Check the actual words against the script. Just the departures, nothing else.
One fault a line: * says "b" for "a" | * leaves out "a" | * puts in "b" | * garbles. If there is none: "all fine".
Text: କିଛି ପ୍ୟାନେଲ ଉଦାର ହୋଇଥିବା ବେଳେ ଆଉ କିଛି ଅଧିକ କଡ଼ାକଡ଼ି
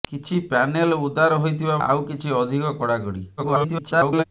* leaves out "ବେଳେ"
* garbles